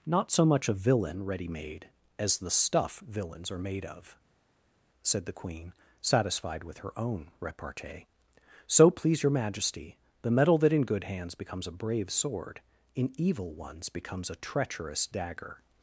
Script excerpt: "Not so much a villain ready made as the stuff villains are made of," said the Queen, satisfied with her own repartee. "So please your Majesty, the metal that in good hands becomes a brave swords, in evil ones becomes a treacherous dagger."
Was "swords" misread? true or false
true